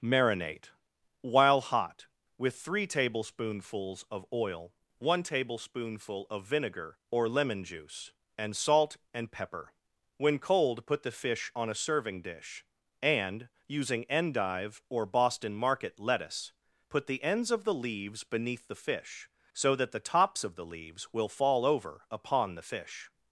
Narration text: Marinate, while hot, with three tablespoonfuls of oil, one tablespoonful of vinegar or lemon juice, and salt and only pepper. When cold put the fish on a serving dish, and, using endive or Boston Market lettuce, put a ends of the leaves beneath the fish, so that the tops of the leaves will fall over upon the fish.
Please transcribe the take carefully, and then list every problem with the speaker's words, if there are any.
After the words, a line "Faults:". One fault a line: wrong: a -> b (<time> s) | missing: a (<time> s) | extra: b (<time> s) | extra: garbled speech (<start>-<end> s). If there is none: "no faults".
Marinate, while hot, with three tablespoonfuls of oil, one tablespoonful of vinegar or lemon juice, and salt and pepper. When cold put the fish on a serving dish, and, using endive or Boston Market lettuce, put the ends of the leaves beneath the fish, so that the tops of the leaves will fall over upon the fish.
Faults:
missing: only (9.3 s)
wrong: a -> the (17.1 s)